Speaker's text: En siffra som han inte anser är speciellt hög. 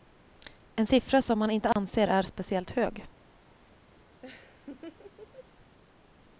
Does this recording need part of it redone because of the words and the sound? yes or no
yes